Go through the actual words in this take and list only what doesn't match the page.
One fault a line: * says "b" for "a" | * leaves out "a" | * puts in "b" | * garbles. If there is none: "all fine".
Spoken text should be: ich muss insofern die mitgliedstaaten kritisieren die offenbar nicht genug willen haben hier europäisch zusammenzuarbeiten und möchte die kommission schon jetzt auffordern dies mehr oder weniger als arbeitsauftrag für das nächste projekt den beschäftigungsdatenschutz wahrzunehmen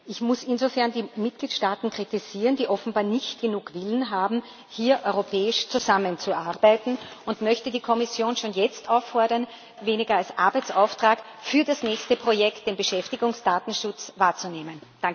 * leaves out "dies mehr oder"